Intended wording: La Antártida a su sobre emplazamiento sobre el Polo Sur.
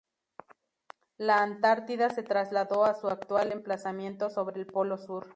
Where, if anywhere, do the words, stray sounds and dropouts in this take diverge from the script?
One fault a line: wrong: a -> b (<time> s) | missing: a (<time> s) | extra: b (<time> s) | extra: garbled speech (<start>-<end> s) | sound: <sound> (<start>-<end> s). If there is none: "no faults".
extra: se trasladó (2.1 s)
wrong: sobre -> actual (3.1 s)